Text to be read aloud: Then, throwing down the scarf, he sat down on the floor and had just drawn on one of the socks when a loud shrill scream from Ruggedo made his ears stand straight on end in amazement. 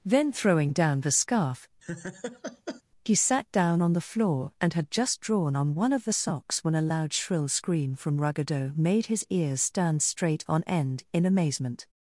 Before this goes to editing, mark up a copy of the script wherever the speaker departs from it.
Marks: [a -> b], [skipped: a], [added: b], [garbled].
Then, throwing down the scarf, he sat down on the floor and had just drawn on one of the socks when a loud shrill scream from Ruggedo made his ears stand straight on end in amazement.